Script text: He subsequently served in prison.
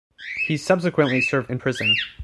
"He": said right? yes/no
yes